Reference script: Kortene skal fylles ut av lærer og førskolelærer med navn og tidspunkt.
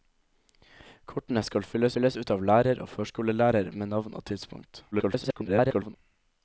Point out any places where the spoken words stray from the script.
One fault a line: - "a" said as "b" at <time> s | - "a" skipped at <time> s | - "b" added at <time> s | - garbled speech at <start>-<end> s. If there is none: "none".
- "fylles" added at 1.9 s
- garbled speech at 4.9-6.0 s